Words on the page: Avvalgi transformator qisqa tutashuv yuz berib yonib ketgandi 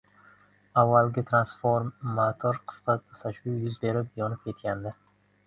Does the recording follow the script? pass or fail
pass